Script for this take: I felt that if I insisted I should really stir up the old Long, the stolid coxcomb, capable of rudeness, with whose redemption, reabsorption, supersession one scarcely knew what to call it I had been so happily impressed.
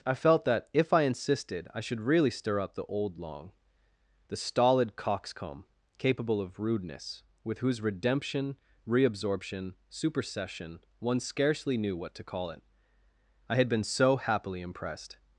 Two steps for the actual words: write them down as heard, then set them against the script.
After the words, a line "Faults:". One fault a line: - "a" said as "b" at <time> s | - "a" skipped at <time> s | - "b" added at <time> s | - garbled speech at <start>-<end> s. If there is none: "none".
I felt that if I insisted I should really stir up the old Long, the stolid coxcomb, capable of rudeness, with whose redemption, reabsorption, supersession one scarcely knew what to call it I had been so happily impressed.
Faults:
none